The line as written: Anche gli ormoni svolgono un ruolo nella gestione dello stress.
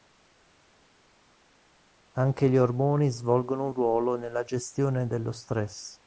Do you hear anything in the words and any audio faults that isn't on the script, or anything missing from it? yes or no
no